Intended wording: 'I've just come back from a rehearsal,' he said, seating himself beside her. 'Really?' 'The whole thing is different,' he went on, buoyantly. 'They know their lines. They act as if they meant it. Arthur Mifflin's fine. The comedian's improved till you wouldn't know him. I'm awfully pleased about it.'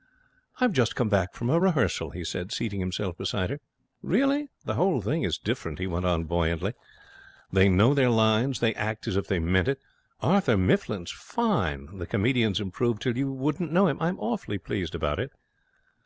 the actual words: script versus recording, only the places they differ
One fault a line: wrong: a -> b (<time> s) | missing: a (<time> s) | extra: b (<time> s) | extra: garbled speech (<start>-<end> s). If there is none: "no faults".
no faults